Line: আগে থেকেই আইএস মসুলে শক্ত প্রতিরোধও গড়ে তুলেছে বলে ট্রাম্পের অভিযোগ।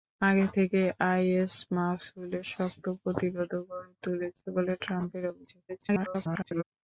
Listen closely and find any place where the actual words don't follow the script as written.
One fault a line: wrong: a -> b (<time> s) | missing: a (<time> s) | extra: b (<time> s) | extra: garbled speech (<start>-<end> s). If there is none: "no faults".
extra: garbled speech (5.7-6.6 s)